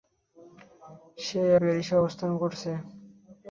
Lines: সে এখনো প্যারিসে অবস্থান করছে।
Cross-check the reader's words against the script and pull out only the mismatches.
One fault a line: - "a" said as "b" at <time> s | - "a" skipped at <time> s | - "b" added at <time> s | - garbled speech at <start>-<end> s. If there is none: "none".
- "এখনো" skipped at 1.4 s